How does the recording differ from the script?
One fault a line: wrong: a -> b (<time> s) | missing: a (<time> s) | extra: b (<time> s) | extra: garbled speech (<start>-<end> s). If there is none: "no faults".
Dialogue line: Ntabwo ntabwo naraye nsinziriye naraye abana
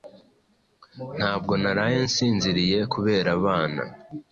missing: ntabwo (1.5 s)
wrong: naraye -> kubera (2.9 s)